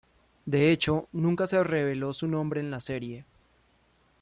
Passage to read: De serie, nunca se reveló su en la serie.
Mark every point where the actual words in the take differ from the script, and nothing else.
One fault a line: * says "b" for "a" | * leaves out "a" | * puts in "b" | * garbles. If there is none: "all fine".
* says "hecho" for "serie"
* puts in "nombre"